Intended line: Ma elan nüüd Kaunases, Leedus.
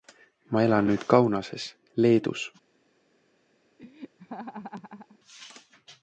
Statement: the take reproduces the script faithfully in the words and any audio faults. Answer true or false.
false